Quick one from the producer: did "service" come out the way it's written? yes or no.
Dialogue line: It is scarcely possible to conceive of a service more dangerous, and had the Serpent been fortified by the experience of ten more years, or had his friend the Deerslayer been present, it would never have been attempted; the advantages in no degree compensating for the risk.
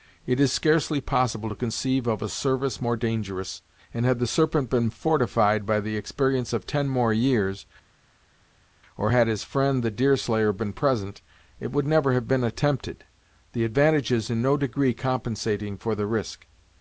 yes